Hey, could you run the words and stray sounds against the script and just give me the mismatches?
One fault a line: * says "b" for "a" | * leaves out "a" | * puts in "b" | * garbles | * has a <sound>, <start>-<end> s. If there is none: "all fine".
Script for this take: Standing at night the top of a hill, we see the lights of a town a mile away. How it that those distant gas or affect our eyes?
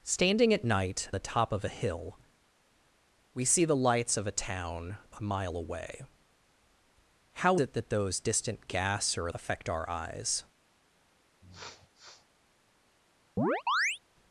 * has a sniff, 11.4-12.3 s
* has a chirp, 13.4-14.0 s